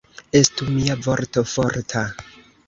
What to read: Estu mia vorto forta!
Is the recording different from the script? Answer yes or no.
no